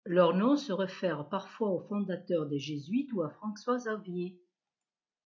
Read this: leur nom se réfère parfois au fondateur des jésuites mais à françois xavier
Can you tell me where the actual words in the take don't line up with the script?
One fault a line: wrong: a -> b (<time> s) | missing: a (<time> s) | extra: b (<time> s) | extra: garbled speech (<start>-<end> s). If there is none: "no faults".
wrong: mais -> ou (3.1 s)